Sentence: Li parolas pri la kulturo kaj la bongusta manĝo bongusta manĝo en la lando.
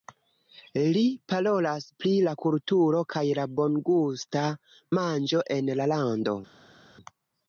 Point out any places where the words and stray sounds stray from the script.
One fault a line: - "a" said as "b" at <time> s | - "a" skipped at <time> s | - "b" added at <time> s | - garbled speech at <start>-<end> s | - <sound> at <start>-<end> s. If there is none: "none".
- "bongusta manĝo" skipped at 5.4 s